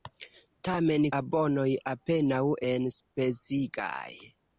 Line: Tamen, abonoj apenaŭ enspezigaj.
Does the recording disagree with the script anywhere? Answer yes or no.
no